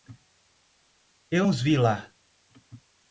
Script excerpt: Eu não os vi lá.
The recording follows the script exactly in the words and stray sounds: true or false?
false